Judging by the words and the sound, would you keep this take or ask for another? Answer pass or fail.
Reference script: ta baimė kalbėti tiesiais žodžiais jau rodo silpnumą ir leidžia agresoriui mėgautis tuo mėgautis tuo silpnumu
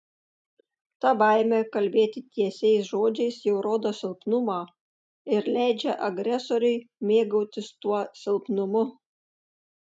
fail